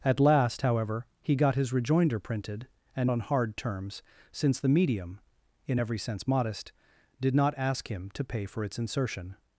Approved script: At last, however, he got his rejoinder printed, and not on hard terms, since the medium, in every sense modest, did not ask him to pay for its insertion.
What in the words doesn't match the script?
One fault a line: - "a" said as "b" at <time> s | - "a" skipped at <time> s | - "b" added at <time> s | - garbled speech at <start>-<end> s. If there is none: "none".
- "not" skipped at 3.1 s